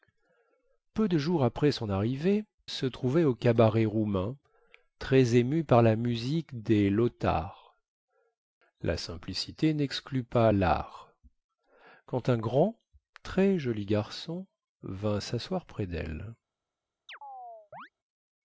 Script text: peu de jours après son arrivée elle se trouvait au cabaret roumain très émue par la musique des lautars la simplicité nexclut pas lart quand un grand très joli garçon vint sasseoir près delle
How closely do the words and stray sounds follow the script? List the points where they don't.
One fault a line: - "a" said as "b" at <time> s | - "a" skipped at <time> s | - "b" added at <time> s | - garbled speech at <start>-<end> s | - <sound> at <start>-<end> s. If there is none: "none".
- "elle" skipped at 2.4 s
- chirp at 17.1-17.9 s